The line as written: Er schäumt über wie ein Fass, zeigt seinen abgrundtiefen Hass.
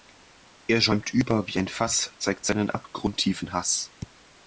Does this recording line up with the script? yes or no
yes